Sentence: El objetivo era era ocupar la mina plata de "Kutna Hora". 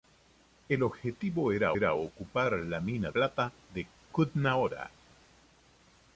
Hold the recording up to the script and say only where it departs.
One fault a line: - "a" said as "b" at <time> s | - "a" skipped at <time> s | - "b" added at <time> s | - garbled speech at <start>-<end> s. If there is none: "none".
none